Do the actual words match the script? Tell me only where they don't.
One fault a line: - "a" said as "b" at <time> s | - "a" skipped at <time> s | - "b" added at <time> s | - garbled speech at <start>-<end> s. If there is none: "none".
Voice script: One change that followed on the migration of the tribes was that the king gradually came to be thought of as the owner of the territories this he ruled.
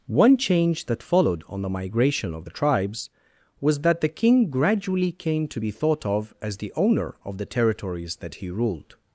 - "this" said as "that" at 8.2 s